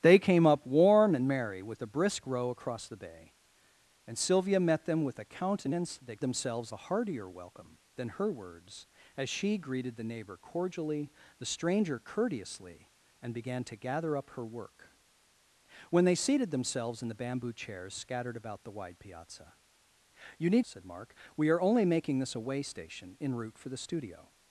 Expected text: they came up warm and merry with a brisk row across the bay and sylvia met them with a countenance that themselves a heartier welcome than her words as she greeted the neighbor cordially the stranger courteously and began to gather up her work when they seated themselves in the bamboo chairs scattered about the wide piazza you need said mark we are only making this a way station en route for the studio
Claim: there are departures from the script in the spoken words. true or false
false